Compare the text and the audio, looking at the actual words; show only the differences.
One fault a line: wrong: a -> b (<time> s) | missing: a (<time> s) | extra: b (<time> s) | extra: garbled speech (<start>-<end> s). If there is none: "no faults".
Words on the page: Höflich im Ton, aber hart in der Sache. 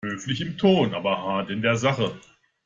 no faults